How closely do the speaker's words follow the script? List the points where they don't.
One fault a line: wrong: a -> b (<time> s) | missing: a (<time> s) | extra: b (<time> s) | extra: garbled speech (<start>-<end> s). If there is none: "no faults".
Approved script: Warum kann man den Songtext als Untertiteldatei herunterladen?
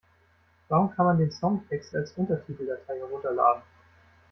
no faults